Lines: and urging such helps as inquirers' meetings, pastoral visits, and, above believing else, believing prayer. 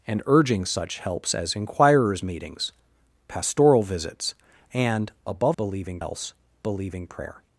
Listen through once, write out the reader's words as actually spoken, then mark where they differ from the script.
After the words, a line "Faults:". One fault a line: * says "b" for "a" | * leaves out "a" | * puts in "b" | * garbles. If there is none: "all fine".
and urging such helps as inquirers' meetings, pastoral visits, and, above believing else, believing prayer.
Faults:
all fine